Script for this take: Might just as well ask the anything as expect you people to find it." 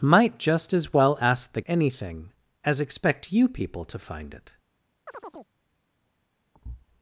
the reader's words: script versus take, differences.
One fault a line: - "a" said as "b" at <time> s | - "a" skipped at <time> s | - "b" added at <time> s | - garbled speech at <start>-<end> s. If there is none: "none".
none